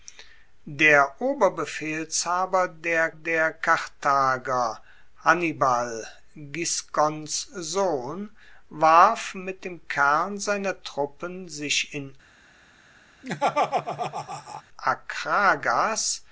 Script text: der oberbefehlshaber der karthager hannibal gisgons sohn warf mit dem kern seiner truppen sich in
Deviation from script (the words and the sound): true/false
true